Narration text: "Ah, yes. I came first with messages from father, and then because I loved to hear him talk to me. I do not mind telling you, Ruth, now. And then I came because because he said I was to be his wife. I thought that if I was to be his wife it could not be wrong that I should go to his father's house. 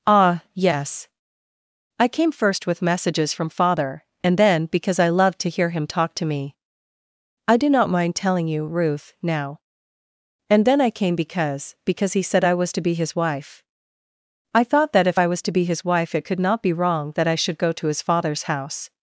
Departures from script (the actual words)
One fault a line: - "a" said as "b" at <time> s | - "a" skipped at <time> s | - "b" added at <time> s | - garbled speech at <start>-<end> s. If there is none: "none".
none